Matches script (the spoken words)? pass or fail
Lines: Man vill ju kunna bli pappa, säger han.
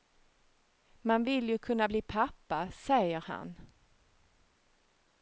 pass